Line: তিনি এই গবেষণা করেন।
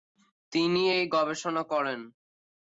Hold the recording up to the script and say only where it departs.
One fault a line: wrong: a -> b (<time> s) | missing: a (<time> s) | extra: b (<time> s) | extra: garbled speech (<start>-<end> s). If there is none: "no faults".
no faults